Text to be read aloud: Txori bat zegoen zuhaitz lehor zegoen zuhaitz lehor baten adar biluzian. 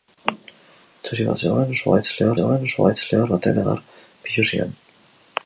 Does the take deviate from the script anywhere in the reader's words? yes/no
no